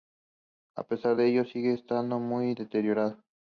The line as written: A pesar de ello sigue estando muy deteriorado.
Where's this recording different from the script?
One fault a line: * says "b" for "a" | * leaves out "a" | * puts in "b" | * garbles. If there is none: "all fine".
all fine